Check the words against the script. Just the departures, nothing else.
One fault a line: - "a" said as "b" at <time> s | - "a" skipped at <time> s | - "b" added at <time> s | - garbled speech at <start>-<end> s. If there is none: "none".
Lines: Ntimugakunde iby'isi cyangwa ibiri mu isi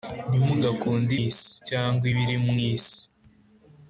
- "iby'isi" said as "isi" at 1.3 s